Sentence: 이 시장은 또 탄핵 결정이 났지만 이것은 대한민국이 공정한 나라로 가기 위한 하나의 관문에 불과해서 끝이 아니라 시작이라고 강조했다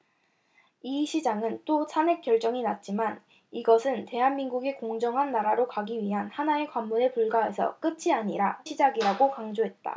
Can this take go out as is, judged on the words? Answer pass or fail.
pass